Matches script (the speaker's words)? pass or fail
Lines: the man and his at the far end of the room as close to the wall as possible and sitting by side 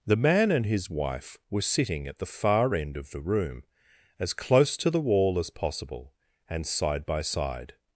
fail